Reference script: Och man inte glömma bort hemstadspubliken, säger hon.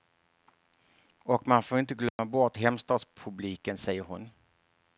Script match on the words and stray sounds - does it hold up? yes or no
no